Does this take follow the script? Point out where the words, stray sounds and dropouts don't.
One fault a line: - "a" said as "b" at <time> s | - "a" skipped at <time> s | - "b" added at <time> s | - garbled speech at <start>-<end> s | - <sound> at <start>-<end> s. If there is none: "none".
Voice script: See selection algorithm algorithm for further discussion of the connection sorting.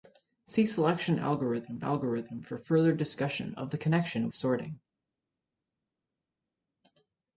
none